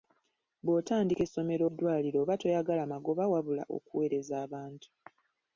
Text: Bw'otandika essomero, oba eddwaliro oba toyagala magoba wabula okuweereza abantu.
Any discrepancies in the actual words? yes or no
yes